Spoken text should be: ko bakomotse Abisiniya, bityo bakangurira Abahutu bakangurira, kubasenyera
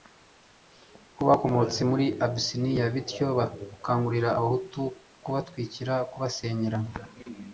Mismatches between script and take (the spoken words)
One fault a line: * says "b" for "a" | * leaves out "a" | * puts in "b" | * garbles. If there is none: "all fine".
* puts in "muri"
* says "kubatwikira" for "bakangurira"